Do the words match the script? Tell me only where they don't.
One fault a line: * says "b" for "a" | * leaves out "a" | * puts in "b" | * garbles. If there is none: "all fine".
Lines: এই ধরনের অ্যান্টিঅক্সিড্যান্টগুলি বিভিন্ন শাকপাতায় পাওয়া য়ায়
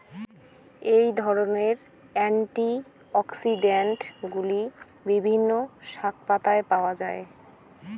all fine